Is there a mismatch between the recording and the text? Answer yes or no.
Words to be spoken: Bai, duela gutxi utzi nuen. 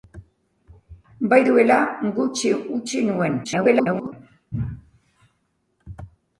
yes